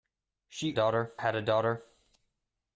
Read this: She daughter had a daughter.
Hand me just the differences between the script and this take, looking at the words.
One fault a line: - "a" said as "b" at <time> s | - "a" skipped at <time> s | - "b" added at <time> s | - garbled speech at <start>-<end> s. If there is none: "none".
none